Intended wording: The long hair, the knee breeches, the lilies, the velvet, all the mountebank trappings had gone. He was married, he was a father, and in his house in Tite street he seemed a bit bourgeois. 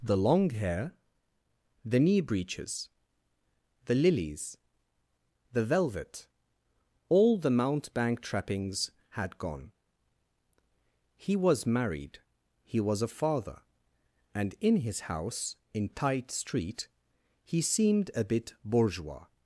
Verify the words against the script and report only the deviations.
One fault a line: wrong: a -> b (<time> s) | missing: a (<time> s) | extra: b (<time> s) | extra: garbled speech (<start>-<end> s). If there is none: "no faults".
no faults